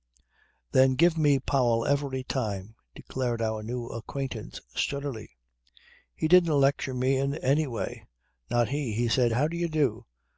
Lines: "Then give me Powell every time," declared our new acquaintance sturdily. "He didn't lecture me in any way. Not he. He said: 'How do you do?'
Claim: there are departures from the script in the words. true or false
false